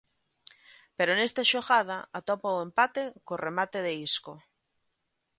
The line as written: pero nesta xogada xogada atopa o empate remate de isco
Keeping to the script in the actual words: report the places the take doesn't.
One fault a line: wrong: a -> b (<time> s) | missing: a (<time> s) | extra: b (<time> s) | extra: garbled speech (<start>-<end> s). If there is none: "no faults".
missing: xogada (2.0 s)
extra: co (3.2 s)